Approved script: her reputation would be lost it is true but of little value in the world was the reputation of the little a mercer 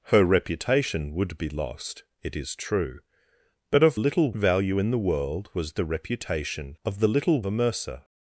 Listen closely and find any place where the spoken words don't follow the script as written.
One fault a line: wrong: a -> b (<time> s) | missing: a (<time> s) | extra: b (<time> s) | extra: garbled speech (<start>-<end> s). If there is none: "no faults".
no faults